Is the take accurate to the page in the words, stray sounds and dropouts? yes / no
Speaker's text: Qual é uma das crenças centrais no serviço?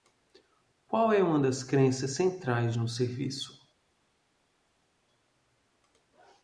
yes